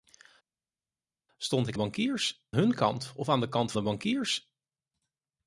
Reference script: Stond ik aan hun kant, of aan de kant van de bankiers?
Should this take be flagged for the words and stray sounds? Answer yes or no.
yes